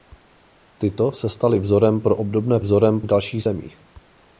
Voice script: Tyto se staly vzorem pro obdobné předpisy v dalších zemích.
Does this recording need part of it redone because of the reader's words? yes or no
yes